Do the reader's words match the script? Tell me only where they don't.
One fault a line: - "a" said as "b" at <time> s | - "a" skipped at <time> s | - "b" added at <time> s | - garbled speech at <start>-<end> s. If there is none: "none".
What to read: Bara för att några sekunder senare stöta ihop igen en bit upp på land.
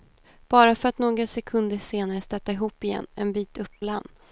- "på" skipped at 3.7 s